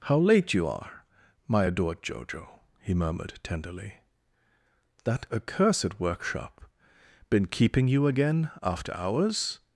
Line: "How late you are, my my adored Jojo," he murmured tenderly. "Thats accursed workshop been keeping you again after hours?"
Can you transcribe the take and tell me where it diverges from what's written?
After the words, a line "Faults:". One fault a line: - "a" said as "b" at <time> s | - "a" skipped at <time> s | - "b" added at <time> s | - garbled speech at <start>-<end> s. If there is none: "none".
"How late you are, my adored Jojo," he murmured tenderly. "That accursed workshop been keeping you again after hours?"
Faults:
- "my" skipped at 1.6 s
- "Thats" said as "That" at 5.0 s